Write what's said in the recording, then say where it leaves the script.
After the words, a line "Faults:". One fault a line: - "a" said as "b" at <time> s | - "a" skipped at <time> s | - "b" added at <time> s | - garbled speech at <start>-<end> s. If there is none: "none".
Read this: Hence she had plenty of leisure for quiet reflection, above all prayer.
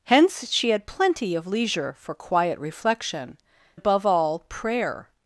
Hence she had plenty of leisure for quiet reflection, above all prayer.
Faults:
none